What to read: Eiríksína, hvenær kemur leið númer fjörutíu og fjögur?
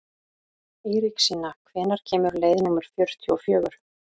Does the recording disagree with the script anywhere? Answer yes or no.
no